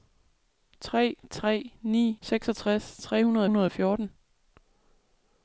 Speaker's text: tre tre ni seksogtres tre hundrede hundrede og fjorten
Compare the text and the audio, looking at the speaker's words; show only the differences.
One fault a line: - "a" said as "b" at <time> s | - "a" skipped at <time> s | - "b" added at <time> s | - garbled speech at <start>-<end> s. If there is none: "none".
none